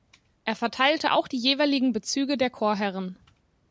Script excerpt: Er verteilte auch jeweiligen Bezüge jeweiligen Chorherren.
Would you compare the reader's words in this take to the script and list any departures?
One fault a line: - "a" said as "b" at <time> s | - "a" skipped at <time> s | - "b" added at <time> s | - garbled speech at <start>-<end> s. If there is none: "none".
- "die" added at 1.2 s
- "jeweiligen" said as "der" at 2.4 s